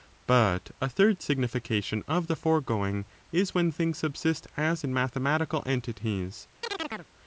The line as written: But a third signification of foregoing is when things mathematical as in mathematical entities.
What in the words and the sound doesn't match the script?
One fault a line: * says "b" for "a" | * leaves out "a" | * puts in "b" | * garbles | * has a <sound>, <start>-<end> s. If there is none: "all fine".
* puts in "the"
* says "subsist" for "mathematical"
* has a chirp, 6.6-7.1 s